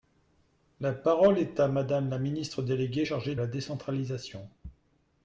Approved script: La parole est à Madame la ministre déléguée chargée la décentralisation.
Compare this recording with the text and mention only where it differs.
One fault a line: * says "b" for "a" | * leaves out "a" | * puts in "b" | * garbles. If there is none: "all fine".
all fine